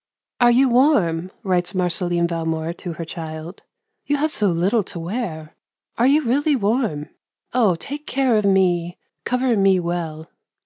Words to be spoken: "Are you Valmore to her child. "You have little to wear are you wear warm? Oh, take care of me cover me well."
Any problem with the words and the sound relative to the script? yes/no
yes